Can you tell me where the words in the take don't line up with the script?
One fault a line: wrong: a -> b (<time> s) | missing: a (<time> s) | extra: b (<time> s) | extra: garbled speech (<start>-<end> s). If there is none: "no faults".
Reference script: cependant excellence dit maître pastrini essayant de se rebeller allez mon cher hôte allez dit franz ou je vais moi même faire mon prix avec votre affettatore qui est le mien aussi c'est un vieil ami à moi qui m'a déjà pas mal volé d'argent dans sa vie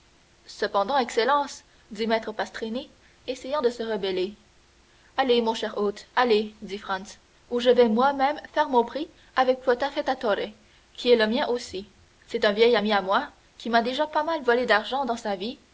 no faults